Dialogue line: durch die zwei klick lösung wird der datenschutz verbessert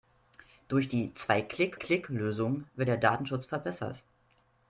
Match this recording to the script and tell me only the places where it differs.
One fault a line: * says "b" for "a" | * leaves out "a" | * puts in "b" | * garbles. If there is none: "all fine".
* puts in "klick"